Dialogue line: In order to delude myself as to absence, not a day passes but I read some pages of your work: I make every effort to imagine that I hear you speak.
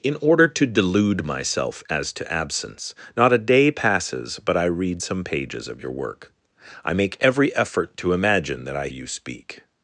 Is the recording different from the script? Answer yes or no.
yes